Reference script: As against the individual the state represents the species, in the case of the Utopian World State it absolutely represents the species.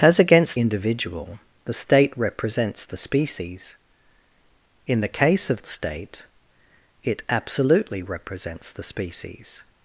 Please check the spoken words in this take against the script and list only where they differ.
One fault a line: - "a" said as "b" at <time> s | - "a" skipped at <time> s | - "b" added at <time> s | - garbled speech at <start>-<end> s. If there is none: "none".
- "the" skipped at 0.6 s
- "the Utopian World" skipped at 5.6 s